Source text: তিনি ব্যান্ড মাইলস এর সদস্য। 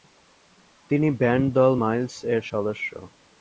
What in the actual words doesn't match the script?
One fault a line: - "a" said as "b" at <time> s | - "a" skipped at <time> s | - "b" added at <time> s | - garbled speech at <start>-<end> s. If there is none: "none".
- "দল" added at 1.6 s